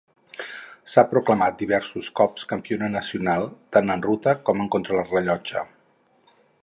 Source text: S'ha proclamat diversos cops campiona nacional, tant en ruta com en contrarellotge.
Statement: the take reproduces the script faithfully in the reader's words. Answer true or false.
true